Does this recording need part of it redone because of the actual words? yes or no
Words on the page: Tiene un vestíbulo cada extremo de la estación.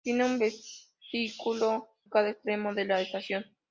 no